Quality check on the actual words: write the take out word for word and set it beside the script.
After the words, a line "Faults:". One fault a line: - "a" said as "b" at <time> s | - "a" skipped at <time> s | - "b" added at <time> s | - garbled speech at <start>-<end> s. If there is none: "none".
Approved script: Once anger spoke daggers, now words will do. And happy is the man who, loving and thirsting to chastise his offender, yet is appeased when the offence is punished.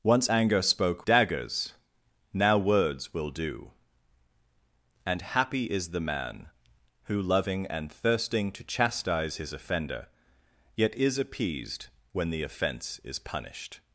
Once anger spoke daggers, now words will do. And happy is the man who, loving and thirsting to chastise his offender, yet is appeased when the offence is punished.
Faults:
none